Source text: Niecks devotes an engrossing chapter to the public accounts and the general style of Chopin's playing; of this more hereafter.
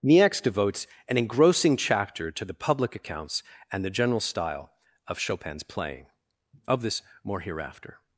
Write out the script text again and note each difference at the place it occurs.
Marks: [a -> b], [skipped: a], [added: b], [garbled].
Niecks devotes an engrossing chapter to the public accounts and the general style of Chopin's playing; of this more hereafter.